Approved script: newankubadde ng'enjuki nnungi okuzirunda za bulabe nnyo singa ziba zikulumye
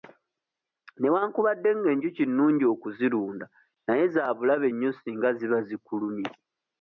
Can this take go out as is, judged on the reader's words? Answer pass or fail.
fail